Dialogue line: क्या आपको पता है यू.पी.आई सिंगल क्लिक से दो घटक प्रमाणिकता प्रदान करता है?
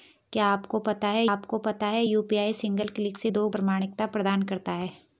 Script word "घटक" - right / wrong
wrong